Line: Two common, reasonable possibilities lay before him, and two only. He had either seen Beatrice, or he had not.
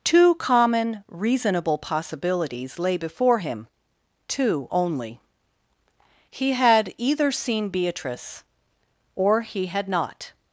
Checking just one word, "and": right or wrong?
wrong